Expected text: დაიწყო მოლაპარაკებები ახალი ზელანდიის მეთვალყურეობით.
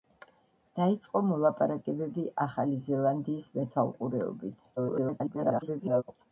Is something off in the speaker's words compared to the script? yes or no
yes